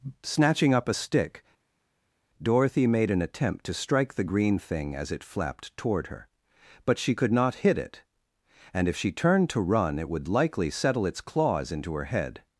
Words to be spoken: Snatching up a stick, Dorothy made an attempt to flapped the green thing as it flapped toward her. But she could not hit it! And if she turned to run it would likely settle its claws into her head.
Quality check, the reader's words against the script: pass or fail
fail